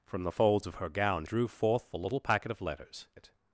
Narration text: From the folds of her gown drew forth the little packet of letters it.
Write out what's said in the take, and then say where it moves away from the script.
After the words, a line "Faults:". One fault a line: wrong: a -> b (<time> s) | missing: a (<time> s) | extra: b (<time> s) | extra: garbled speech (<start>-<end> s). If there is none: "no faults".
From the folds of her gown drew forth the little packet of letters it.
Faults:
no faults